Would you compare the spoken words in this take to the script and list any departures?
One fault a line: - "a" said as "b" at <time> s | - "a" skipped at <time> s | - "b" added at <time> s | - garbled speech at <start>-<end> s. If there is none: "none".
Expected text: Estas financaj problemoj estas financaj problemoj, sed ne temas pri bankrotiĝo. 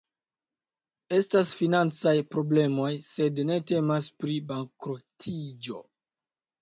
- "estas financaj problemoj" skipped at 2.9 s